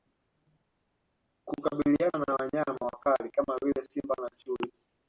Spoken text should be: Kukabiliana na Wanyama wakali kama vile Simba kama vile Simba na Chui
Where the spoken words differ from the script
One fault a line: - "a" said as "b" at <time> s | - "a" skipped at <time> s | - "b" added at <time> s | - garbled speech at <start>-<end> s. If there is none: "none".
- "kama vile Simba" skipped at 4.1 s